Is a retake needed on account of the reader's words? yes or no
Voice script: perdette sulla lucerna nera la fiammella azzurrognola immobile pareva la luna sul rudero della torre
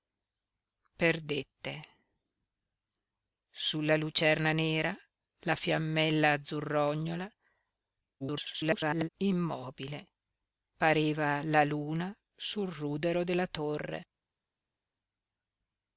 yes